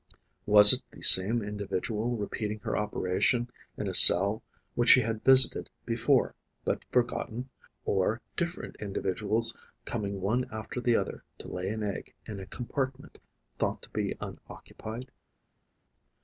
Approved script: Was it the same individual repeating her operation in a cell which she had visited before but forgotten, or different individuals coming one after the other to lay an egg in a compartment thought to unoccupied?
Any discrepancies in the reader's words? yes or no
yes